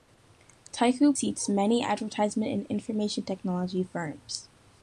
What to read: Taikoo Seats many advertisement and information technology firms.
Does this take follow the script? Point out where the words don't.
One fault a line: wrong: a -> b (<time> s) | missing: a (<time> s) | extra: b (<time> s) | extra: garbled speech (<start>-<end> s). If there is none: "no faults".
no faults